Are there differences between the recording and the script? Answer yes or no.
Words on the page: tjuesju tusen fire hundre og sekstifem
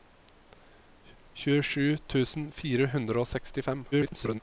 yes